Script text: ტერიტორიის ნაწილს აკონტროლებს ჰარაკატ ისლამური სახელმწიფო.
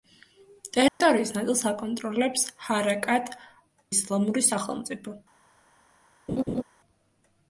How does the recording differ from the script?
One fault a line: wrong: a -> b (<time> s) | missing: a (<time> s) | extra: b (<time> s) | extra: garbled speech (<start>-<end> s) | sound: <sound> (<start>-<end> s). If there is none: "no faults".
sound: dropout (0.9-1.0 s)
sound: laugh (6.3-6.6 s)